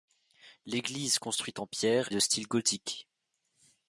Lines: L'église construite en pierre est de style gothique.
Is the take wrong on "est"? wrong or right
wrong